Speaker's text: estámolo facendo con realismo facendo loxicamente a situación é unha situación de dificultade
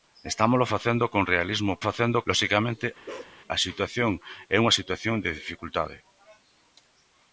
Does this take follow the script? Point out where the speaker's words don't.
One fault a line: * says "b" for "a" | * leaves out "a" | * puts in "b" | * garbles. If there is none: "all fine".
all fine